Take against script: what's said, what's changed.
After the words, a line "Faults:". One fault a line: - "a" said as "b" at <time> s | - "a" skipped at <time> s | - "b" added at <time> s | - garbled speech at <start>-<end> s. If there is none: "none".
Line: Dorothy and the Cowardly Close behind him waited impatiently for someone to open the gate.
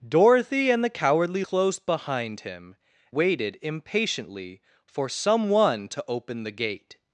Dorothy and the Cowardly Close behind him waited impatiently for someone to open the gate.
Faults:
none